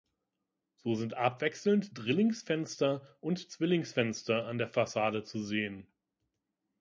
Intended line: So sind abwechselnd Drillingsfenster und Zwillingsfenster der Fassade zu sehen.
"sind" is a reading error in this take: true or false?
false